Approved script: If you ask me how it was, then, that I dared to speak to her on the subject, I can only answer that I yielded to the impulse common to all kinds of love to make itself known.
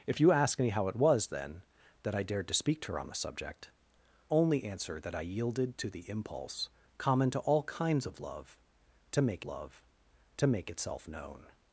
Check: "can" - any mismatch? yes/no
yes